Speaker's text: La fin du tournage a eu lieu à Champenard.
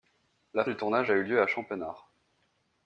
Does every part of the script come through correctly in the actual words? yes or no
no